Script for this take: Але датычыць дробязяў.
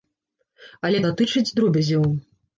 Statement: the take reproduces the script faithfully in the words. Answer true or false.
true